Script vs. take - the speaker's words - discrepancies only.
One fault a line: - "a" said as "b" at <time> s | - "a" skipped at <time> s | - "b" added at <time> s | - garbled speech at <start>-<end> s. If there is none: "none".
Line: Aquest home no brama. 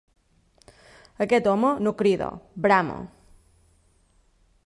- "crida" added at 2.0 s